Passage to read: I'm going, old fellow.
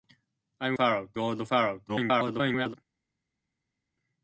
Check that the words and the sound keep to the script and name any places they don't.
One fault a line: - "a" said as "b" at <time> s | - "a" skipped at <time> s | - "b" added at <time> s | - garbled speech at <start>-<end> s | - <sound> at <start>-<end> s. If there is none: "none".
- "going" said as "fellow" at 0.7 s
- garbled speech at 1.9-2.7 s